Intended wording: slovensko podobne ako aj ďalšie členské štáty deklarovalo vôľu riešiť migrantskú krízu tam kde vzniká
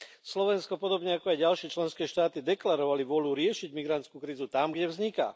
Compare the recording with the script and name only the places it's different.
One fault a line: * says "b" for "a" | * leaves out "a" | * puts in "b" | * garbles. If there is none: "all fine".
all fine